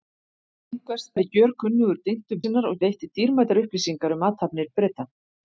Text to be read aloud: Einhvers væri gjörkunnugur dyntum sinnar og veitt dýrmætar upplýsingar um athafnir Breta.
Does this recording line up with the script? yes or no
yes